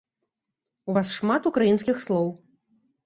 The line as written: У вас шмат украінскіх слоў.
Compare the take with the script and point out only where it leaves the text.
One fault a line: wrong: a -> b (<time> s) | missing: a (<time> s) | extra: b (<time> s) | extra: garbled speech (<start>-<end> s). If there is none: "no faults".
no faults